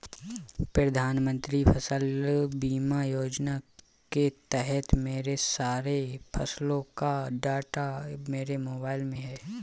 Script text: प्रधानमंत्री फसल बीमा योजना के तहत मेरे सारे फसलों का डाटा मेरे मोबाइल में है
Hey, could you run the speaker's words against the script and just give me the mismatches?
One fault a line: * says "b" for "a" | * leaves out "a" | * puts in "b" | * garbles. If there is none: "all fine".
all fine